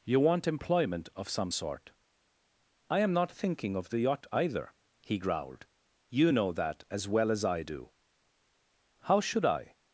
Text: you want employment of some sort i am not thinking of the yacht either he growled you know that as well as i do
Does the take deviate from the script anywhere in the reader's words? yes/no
yes